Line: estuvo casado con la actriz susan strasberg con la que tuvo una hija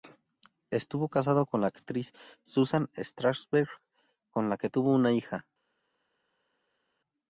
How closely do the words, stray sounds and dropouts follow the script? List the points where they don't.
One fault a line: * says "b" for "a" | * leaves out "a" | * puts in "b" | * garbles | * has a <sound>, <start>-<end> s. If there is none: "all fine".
all fine